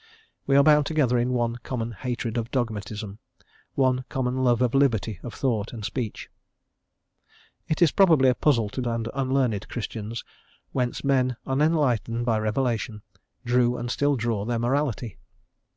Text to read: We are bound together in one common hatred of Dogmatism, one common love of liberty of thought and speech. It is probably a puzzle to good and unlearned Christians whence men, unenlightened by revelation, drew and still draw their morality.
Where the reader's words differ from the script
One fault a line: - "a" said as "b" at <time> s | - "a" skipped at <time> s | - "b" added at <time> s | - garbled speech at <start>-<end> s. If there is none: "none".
- "good" skipped at 8.8 s